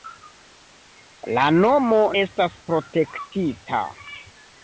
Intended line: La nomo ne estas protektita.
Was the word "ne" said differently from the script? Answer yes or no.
yes